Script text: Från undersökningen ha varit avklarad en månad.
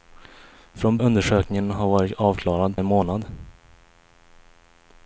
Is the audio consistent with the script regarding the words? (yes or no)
yes